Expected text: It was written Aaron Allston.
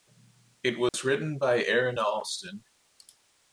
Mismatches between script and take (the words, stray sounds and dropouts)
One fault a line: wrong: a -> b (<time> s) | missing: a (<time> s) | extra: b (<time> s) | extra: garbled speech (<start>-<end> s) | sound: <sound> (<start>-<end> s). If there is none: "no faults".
sound: dropout (0.9-0.9 s)
extra: by (1.4 s)